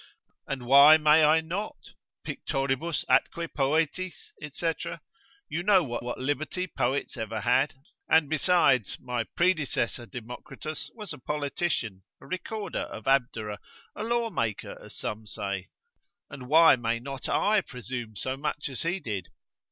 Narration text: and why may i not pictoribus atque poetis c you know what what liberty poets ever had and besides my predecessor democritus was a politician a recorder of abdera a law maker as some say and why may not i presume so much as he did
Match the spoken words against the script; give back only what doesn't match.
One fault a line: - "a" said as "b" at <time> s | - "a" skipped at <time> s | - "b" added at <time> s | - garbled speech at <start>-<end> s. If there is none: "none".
none